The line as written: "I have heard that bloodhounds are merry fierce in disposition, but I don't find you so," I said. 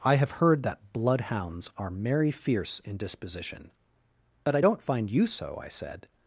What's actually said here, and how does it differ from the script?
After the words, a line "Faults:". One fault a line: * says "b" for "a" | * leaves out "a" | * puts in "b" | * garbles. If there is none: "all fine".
"I have heard that bloodhounds are merry fierce in disposition, but I don't find you so," I said.
Faults:
all fine